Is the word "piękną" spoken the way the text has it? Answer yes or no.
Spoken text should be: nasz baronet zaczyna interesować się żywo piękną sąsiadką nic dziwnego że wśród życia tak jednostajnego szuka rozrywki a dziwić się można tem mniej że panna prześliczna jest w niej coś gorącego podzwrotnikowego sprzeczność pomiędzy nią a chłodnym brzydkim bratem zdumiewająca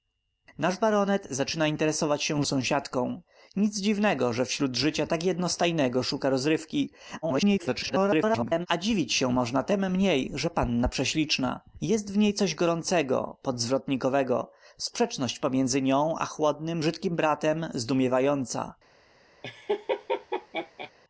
no